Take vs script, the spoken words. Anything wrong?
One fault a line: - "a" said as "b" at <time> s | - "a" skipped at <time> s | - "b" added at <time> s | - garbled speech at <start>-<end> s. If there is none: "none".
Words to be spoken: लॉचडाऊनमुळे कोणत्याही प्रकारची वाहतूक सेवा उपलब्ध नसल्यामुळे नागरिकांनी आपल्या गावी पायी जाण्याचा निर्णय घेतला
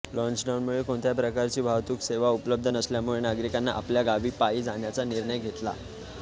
none